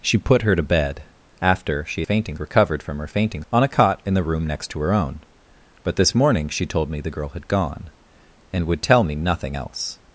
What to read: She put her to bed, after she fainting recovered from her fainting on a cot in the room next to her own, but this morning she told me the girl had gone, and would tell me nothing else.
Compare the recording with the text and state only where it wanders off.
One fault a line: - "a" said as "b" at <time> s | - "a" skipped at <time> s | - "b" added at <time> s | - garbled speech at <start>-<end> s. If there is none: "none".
none